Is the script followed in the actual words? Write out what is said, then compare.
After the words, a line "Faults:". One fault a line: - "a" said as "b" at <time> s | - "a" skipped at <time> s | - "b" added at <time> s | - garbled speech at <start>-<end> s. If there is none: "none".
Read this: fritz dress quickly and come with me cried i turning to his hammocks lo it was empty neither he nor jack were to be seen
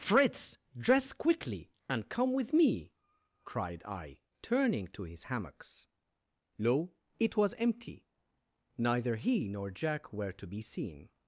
fritz dress quickly and come with me cried i turning to his hammocks lo it was empty neither he nor jack were to be seen
Faults:
none